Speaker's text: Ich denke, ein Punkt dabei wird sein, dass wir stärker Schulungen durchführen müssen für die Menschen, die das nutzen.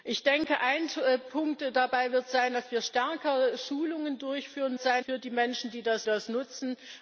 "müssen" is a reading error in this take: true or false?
true